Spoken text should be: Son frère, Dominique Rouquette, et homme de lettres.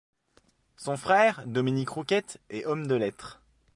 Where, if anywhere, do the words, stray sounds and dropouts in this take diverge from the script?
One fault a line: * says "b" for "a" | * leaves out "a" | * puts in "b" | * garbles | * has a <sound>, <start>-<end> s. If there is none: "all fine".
all fine